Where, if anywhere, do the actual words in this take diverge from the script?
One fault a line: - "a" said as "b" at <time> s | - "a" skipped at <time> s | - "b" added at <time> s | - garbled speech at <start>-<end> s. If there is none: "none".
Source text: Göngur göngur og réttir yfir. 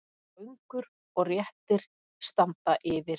- "göngur" skipped at 0.8 s
- "standa" added at 2.3 s